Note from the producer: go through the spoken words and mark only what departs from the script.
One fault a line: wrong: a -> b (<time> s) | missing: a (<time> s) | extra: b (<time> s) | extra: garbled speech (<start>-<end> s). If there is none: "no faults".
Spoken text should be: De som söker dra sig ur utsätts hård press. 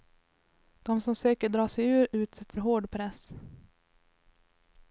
no faults